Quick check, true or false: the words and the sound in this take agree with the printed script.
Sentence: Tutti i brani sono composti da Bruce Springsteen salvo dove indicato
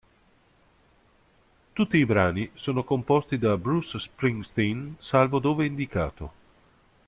true